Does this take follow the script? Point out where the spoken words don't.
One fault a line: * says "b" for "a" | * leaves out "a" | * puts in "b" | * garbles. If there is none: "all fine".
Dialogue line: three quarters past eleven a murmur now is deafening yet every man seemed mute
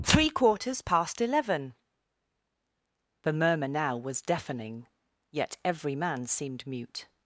* says "the" for "a"
* says "was" for "is"